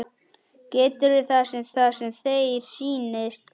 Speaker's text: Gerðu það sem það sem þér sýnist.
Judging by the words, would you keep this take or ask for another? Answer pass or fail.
pass